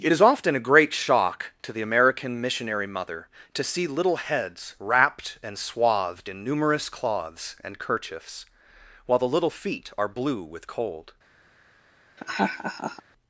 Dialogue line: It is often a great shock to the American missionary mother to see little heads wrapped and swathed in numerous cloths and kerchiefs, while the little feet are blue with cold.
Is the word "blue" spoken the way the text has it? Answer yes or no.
yes